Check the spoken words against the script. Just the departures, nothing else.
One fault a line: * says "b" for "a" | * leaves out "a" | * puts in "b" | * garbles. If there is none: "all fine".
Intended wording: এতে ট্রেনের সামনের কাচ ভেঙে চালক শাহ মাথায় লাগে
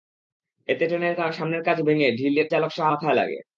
all fine